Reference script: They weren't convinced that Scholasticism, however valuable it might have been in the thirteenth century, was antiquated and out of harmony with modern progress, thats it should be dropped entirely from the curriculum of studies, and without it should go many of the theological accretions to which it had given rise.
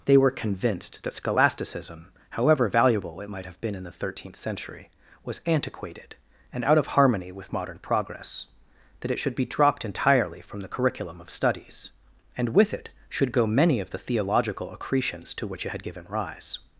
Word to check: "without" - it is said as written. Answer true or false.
false